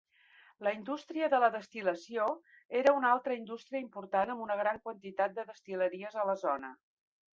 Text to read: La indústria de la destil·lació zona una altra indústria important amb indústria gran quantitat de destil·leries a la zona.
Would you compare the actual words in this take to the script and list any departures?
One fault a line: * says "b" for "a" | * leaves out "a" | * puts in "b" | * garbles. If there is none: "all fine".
* says "era" for "zona"
* says "una" for "indústria"